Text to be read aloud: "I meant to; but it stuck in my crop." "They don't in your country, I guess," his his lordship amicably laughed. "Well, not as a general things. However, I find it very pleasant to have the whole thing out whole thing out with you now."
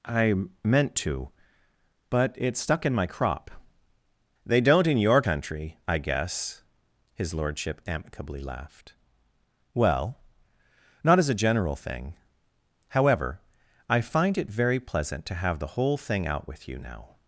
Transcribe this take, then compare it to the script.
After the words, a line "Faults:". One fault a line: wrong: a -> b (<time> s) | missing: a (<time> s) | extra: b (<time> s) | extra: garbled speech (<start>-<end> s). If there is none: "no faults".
"I meant to; but it stuck in my crop." "They don't in your country, I guess," his lordship amicably laughed. "Well, not as a general thing. However, I find it very pleasant to have the whole thing out with you now."
Faults:
missing: his (7.3 s)
wrong: things -> thing (11.8 s)
missing: whole thing out (16.5 s)